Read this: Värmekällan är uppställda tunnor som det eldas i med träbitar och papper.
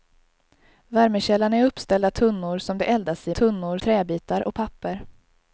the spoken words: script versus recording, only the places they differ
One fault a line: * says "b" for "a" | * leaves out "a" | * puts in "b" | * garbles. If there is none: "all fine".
* says "tunnor" for "med"